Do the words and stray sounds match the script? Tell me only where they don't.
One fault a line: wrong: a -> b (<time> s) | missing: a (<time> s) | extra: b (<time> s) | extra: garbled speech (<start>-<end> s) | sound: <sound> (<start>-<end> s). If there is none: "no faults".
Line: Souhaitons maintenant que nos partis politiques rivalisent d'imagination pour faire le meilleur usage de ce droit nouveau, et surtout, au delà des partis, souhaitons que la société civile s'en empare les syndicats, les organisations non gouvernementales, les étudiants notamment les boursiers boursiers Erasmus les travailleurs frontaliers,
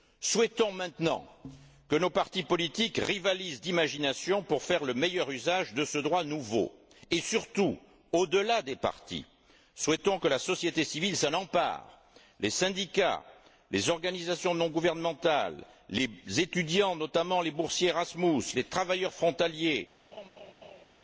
missing: boursiers (17.9 s)
sound: laugh (20.1-20.8 s)